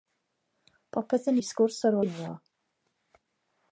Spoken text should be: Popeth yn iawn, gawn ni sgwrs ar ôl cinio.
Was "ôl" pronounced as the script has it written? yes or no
no